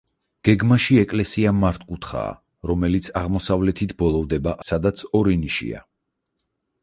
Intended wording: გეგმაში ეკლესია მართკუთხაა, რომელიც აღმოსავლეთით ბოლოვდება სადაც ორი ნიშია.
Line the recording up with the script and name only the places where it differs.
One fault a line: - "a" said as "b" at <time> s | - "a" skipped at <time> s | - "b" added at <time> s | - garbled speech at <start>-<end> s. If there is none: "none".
none